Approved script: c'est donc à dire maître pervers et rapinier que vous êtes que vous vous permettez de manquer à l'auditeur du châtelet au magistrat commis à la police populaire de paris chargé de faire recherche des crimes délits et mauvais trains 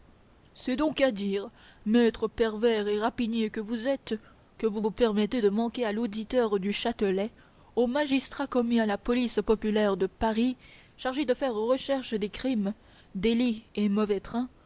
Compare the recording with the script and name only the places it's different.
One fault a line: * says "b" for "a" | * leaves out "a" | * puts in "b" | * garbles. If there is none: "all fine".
all fine